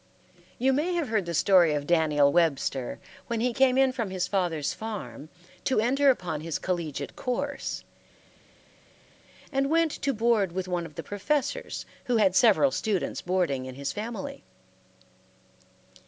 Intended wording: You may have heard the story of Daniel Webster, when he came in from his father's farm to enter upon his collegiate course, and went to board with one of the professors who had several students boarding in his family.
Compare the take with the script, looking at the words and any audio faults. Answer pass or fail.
pass